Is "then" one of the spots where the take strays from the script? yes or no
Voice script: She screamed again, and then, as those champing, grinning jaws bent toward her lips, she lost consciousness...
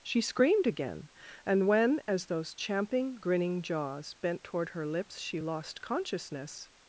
yes